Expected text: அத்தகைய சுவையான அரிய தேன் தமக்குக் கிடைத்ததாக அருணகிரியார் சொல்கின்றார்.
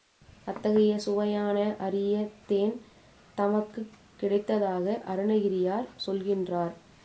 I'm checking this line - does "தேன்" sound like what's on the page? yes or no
yes